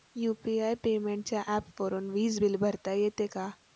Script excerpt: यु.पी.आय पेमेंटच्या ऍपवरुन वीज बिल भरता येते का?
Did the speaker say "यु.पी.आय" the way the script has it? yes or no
yes